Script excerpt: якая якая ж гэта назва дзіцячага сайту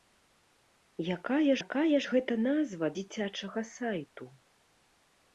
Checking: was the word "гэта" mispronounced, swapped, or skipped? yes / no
no